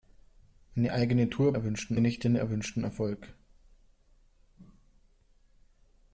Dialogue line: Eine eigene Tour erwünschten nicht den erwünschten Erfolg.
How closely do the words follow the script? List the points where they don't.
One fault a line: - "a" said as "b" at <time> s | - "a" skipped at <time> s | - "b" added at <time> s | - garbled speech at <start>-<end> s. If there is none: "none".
none